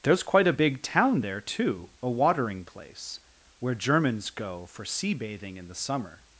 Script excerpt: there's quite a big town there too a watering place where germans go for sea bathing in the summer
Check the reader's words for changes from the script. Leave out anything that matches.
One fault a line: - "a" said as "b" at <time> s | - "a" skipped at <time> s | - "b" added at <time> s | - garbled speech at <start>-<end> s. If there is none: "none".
none